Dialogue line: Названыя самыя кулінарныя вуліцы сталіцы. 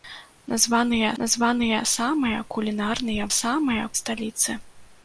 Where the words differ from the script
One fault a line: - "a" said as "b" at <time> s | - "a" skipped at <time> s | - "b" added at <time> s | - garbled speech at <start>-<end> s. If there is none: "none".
- "названыя" added at 1.2 s
- "вуліцы" said as "самыя" at 3.4 s